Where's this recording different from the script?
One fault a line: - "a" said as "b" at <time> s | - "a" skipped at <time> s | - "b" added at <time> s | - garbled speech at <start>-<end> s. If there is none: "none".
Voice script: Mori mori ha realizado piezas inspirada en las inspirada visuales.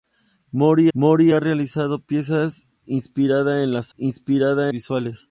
none